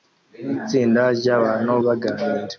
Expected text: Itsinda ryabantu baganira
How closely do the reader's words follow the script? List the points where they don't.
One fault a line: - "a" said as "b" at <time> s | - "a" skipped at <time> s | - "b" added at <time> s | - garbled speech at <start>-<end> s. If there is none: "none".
none